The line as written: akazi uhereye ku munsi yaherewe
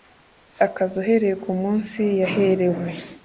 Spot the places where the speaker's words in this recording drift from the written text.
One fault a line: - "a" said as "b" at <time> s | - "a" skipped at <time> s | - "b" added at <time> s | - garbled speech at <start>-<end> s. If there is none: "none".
none